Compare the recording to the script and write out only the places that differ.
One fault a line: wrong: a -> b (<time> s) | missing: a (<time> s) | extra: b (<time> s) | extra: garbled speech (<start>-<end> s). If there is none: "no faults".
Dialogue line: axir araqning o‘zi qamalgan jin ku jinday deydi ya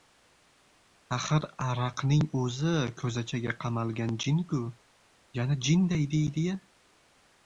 extra: ko‘zachaga (3.0 s)
extra: yana (5.4 s)